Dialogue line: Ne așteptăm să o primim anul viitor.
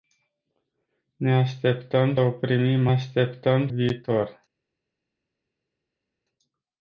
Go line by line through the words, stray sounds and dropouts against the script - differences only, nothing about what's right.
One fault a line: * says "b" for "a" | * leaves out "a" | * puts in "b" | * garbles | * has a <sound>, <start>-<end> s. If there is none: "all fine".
* leaves out "să"
* says "așteptăm" for "anul"